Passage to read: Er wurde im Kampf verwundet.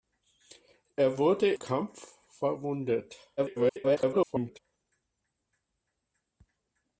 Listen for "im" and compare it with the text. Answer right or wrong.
wrong